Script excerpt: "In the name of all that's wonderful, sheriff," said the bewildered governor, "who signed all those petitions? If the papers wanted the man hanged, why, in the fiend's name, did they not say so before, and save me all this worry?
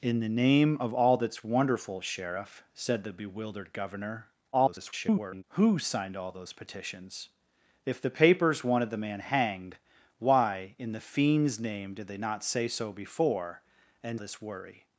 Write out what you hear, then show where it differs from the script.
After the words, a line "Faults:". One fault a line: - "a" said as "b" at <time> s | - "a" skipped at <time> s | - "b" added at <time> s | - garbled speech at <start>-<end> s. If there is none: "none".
"In the name of all that's wonderful, sheriff," said the bewildered governor, [garbled] "who signed all those petitions? If the papers wanted the man hanged, why, in the fiend's name, did they not say so before, and this worry?
Faults:
- garbled speech at 4.5-5.4 s
- "save me all" skipped at 14.2 s